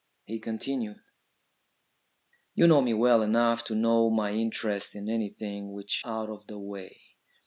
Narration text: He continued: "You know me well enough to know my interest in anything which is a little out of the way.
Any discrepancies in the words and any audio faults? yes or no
yes